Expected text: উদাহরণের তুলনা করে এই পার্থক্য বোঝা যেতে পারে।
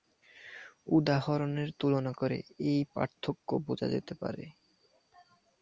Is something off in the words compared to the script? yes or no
no